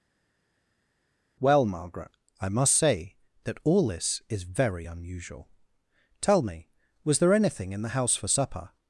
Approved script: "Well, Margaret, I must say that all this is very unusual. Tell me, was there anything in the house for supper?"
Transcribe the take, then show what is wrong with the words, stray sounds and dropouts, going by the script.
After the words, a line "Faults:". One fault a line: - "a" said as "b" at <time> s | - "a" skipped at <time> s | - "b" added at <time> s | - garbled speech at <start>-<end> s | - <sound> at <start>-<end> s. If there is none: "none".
"Well, Margaret, I must say that all this is very unusual. Tell me, was there anything in the house for supper?"
Faults:
none